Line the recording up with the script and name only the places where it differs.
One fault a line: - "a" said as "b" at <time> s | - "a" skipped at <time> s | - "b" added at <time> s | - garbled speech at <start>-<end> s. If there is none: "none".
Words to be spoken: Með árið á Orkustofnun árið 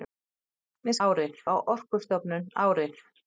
none